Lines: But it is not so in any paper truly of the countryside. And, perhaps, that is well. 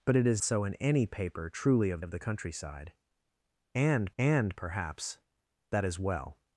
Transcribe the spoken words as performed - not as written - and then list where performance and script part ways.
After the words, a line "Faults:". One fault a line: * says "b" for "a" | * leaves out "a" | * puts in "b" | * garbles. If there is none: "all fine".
But it is so in any paper truly of of the countryside. And and, perhaps, that is well.
Faults:
* leaves out "not"
* puts in "of"
* puts in "and"